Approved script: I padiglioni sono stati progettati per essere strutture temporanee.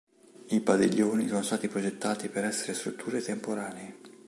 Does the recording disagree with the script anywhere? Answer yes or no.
no